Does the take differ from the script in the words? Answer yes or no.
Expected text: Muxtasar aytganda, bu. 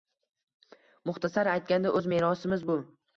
yes